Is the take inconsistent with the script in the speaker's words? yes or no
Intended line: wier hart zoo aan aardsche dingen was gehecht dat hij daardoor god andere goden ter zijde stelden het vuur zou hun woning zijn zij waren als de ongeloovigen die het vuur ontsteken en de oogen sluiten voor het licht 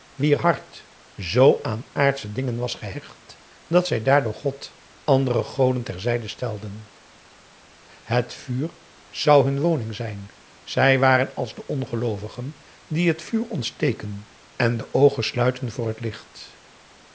yes